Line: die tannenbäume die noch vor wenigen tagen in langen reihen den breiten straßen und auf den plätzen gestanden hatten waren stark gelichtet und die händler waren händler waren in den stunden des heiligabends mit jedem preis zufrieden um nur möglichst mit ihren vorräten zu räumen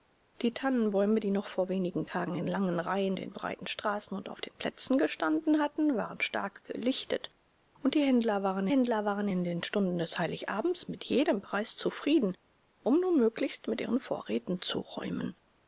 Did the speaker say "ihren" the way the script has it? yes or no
yes